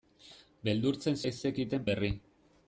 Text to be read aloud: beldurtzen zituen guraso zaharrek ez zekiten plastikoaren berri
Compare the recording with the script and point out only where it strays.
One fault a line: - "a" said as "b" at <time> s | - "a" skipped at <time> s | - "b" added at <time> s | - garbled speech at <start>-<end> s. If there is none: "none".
- "zituen guraso zaharrek" skipped at 1.2 s
- "plastikoaren" skipped at 1.8 s